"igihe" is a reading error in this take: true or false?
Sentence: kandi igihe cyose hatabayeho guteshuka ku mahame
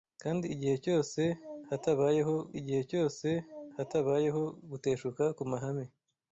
false